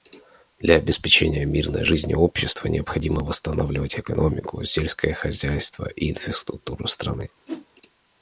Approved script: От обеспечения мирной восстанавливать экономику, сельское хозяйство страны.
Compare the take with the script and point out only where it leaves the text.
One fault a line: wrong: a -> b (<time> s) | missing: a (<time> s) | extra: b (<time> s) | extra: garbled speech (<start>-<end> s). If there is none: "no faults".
wrong: От -> Для (0.6 s)
extra: жизни общества необходимо (1.9 s)
extra: и инфраструктуру (6.0 s)